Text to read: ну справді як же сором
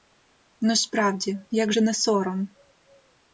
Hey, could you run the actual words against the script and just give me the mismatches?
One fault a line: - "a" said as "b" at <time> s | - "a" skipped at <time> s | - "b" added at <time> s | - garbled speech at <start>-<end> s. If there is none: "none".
- "не" added at 1.8 s